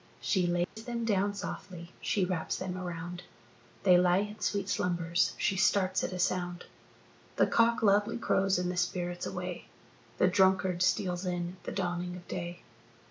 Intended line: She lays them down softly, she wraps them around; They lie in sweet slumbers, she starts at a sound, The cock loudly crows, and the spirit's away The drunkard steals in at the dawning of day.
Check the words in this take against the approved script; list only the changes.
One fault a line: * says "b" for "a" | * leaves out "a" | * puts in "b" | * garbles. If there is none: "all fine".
all fine